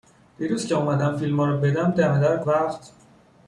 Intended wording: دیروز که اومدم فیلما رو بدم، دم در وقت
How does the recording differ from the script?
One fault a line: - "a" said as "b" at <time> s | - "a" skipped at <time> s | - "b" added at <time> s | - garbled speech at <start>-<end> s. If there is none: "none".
none